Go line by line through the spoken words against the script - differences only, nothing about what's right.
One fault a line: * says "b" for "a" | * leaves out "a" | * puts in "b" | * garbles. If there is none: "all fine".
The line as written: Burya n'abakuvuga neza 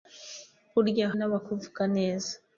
all fine